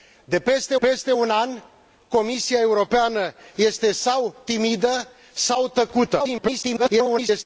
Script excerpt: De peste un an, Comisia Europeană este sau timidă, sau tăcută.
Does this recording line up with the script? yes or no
no